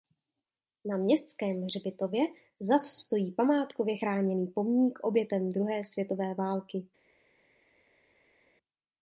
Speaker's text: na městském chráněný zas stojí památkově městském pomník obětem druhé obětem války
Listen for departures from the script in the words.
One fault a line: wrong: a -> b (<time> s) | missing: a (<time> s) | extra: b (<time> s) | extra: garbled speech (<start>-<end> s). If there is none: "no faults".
wrong: chráněný -> hřbitově (1.6 s)
wrong: městském -> chráněný (3.9 s)
wrong: obětem -> světové (5.8 s)